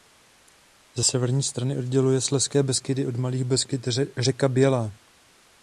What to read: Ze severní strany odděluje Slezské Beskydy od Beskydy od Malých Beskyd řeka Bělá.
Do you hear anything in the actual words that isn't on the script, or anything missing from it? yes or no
yes